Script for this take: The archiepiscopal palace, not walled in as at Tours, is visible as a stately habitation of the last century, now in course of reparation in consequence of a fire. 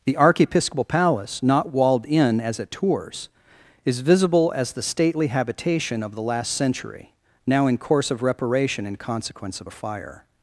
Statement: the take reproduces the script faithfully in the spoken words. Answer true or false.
false